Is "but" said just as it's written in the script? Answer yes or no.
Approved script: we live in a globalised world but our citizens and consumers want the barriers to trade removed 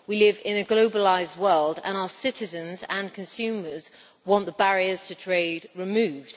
no